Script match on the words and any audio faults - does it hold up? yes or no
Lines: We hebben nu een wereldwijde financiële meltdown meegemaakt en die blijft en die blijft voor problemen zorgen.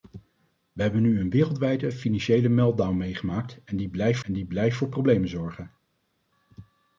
yes